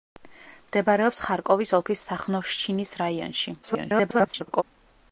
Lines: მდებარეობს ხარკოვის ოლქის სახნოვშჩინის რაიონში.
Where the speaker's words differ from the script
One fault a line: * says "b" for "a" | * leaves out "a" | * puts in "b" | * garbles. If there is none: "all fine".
* garbles